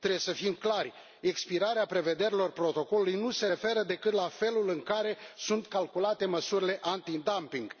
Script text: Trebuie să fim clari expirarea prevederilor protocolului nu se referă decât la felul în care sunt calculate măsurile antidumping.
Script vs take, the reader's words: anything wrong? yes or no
no